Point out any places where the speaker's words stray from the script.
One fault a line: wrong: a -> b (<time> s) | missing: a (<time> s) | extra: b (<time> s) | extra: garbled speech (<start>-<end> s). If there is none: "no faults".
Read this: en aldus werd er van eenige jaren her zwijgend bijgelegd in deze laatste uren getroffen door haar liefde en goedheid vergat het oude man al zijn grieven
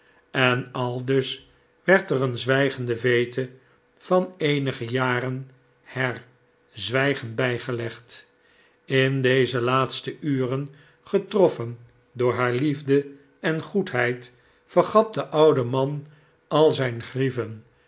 extra: een zwijgende veete (2.2 s)
wrong: het -> de (15.1 s)